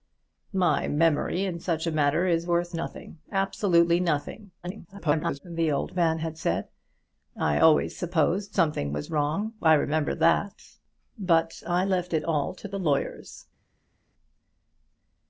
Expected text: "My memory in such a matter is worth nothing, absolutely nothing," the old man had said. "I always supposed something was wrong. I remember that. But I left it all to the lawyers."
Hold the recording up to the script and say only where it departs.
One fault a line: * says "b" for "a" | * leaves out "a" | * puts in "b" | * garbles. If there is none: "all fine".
* garbles